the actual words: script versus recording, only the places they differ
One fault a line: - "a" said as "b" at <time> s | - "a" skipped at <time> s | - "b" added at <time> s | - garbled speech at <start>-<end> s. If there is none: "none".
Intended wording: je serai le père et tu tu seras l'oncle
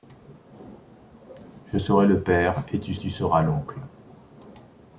none